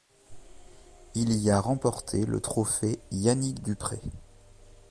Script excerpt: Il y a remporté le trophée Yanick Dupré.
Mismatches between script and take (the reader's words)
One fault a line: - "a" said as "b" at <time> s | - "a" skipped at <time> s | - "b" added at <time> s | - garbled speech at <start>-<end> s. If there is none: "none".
none